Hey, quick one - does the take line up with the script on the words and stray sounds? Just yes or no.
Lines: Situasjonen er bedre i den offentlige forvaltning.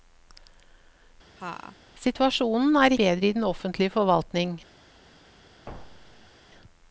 no